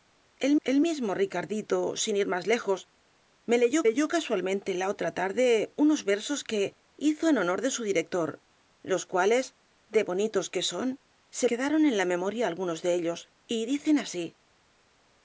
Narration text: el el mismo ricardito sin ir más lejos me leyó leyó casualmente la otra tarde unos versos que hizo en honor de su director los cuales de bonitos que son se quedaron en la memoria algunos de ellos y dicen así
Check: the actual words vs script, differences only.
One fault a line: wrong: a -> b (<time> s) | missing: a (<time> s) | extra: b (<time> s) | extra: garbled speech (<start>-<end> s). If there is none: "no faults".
no faults